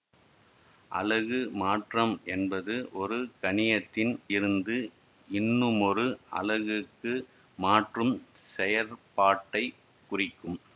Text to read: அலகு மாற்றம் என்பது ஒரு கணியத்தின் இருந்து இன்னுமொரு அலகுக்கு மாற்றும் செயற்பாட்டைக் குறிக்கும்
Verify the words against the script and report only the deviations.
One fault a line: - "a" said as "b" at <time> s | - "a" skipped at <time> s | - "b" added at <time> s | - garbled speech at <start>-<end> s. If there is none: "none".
none